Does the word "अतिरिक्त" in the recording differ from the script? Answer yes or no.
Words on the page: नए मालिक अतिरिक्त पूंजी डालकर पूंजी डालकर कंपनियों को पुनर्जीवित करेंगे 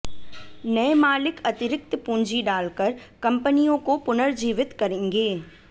no